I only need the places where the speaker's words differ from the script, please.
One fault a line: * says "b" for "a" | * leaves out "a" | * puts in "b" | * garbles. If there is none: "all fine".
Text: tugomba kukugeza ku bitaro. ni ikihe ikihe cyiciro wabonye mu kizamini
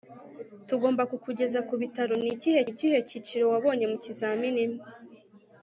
all fine